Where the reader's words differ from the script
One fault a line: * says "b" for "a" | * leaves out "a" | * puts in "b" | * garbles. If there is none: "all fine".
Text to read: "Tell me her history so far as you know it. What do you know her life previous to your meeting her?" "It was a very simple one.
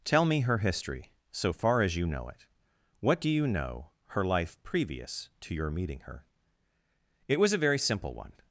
all fine